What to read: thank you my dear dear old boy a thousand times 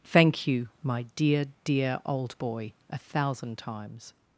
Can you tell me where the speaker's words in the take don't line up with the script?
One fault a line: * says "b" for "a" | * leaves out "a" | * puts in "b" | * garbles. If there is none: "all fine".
all fine